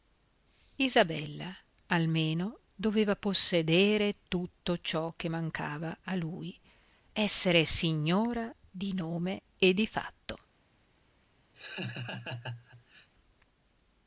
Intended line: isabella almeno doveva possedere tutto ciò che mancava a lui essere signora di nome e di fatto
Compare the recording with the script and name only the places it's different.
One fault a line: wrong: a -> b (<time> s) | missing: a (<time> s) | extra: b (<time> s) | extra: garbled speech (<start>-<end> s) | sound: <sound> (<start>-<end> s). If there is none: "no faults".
sound: laugh (11.5-13.1 s)